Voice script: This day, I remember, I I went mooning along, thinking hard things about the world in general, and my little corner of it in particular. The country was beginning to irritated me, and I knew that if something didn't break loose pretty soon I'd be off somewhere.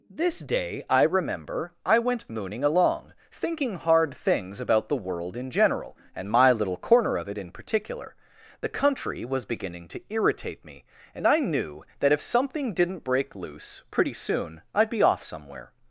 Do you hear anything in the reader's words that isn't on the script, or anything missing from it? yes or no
yes